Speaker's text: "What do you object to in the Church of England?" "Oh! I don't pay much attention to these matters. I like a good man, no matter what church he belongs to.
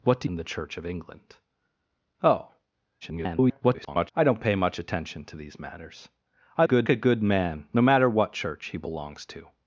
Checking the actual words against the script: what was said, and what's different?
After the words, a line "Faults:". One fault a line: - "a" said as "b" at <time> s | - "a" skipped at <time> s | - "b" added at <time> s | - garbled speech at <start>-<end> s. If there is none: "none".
"What do in the Church of England?" "Oh! [garbled] I don't pay much attention to these matters. I good a good man, no matter what church he belongs to.
Faults:
- "you object to" skipped at 0.3 s
- garbled speech at 3.0-4.1 s
- "like" said as "good" at 6.6 s